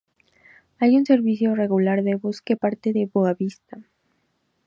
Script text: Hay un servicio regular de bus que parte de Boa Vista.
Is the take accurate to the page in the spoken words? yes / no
yes